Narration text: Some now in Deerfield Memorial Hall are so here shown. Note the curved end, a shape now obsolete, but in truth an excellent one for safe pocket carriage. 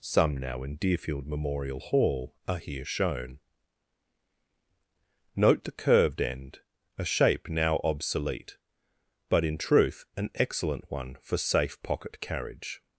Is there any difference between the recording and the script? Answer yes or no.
yes